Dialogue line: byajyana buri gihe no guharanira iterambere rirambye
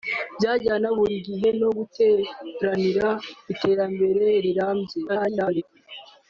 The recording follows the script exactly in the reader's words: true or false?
false